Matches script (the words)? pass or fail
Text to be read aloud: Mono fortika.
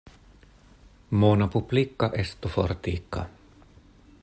fail